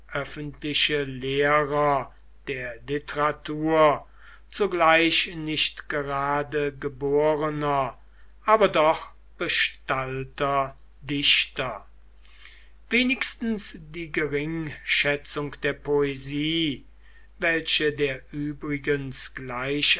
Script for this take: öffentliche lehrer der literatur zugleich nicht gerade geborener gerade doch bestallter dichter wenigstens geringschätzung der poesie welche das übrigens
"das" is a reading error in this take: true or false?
true